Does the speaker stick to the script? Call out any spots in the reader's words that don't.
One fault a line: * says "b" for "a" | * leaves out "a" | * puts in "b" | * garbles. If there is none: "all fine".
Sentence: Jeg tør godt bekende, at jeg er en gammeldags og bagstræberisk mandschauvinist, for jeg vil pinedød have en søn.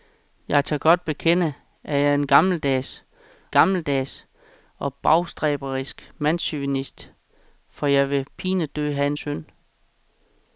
* puts in "gammeldags"